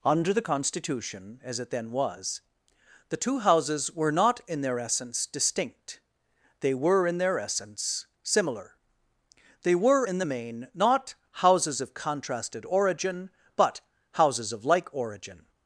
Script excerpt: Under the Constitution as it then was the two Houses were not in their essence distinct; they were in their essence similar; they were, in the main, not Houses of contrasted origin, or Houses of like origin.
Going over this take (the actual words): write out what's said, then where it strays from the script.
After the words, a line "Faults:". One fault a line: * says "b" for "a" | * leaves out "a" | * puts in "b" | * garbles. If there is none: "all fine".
Under the Constitution as it then was the two Houses were not in their essence distinct; they were in their essence similar; they were, in the main, not Houses of contrasted origin, but Houses of like origin.
Faults:
* says "but" for "or"